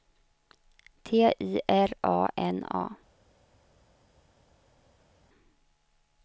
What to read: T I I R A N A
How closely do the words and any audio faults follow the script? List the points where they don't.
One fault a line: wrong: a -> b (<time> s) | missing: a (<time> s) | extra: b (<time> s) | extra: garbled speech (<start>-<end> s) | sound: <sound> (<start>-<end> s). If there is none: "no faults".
missing: I (1.6 s)